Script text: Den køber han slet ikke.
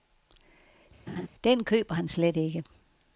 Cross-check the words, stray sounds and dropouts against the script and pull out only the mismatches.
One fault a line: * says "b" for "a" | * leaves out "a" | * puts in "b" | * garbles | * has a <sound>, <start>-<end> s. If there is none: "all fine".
* has a laugh, 1.1-1.3 s